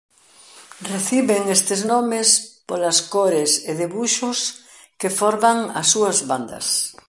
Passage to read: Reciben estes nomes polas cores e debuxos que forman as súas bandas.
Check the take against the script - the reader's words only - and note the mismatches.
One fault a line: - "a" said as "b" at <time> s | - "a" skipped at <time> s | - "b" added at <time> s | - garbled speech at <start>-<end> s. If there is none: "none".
none